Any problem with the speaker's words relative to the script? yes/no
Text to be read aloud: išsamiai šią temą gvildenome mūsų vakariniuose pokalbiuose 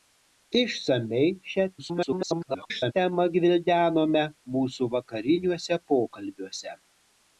yes